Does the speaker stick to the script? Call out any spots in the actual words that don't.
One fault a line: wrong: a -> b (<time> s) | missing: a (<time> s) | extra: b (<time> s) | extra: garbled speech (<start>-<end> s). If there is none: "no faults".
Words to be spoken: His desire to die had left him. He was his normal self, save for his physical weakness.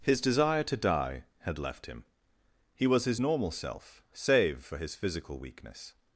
no faults